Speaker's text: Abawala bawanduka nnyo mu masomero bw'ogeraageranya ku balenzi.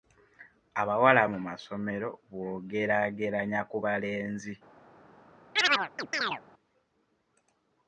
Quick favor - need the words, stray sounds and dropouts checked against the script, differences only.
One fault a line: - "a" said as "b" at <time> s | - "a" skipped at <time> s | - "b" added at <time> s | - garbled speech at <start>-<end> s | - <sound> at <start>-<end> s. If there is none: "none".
- "bawanduka nnyo" skipped at 1.2 s
- chirp at 5.6-6.4 s